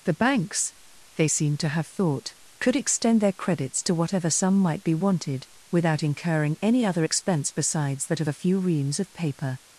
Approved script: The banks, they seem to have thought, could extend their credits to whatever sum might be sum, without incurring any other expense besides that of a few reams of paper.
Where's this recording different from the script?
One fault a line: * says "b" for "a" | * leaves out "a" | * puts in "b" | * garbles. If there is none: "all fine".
* says "wanted" for "sum"